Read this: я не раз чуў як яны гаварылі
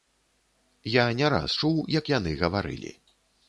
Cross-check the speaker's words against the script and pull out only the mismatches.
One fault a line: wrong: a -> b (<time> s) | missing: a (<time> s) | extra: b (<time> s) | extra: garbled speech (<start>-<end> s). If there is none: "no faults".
no faults